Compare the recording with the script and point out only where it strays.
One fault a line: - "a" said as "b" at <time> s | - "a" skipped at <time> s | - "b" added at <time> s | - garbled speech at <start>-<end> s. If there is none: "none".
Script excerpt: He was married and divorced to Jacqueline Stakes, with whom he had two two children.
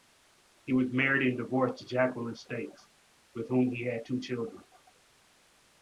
- "two" skipped at 4.2 s